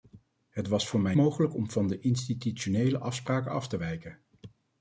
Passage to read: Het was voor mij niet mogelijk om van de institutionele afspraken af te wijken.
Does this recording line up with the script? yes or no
no